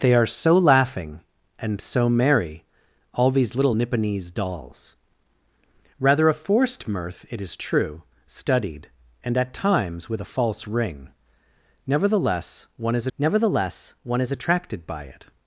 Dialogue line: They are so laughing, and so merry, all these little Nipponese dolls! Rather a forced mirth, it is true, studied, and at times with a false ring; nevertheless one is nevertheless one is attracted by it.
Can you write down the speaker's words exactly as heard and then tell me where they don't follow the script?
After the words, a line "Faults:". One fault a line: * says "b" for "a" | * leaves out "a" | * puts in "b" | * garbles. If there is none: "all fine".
They are so laughing, and so merry, all these little Nipponese dolls! Rather a forced mirth, it is true, studied, and at times with a false ring; nevertheless one is nevertheless one is attracted by it.
Faults:
all fine